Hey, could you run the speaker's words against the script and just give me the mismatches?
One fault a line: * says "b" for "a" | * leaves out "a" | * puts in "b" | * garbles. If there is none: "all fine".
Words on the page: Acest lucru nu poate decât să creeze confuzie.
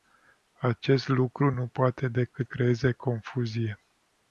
* leaves out "să"